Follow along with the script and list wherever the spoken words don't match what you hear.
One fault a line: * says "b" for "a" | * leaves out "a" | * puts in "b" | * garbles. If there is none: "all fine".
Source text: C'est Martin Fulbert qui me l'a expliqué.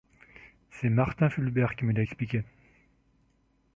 all fine